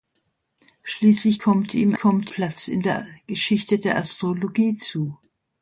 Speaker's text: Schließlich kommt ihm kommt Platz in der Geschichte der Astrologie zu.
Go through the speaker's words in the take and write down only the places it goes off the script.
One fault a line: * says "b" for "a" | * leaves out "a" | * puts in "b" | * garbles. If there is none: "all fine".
all fine